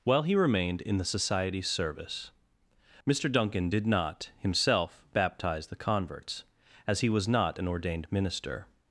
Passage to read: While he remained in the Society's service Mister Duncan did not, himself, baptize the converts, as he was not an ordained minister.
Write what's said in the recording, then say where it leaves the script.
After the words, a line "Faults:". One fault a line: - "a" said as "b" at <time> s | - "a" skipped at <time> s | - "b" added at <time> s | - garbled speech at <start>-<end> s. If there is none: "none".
While he remained in the Society's service Mister Duncan did not, himself, baptize the converts, as he was not an ordained minister.
Faults:
none